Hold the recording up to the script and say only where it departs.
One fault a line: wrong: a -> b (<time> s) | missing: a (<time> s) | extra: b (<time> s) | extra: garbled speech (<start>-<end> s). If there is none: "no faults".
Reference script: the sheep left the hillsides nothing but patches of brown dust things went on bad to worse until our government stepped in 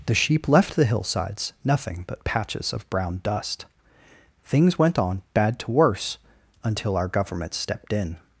no faults